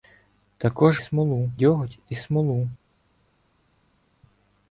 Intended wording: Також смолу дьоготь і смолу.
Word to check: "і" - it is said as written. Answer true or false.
true